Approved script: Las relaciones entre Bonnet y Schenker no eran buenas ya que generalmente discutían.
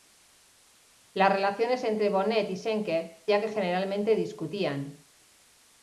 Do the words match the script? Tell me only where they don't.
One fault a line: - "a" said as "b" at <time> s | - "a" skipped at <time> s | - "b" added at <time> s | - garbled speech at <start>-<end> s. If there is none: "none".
- "no eran buenas" skipped at 3.3 s